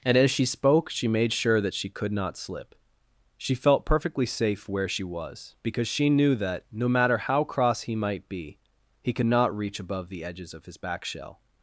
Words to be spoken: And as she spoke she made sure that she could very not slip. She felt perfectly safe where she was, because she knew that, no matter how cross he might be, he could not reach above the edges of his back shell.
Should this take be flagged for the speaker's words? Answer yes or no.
yes